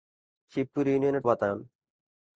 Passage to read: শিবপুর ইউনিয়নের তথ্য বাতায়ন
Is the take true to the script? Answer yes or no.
no